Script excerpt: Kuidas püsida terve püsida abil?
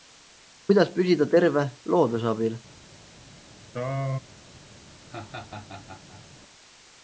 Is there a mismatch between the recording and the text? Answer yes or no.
yes